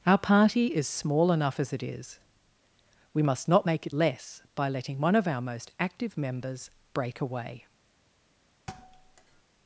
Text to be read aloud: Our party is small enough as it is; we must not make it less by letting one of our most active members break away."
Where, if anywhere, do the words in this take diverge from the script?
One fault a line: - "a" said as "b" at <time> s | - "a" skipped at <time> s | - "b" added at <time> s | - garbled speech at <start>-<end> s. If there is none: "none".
none